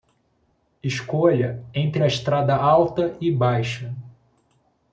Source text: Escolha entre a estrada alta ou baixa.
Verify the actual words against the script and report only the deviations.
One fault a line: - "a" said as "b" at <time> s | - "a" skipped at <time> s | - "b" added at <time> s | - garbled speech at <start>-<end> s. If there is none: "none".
- "ou" said as "e" at 3.2 s